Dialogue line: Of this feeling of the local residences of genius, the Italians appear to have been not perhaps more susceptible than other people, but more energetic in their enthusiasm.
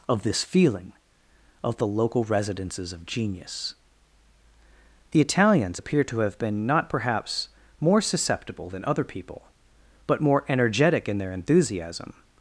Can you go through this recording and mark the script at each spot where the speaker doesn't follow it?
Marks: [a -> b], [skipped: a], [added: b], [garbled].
Of this feeling of the local residences of genius, the Italians appear to have been not perhaps more susceptible than other people, but more energetic in their enthusiasm.